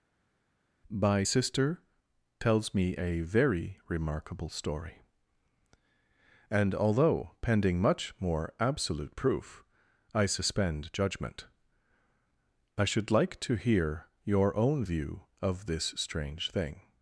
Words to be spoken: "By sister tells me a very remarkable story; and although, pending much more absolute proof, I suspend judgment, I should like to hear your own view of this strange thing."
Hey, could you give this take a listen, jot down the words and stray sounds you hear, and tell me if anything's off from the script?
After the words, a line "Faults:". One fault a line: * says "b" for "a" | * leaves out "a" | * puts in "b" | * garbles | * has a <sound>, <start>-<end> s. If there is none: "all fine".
"By sister tells me a very remarkable story; and although, pending much more absolute proof, I suspend judgment, I should like to hear your own view of this strange thing."
Faults:
all fine